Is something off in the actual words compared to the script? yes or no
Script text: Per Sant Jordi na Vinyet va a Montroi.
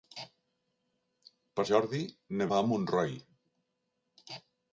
yes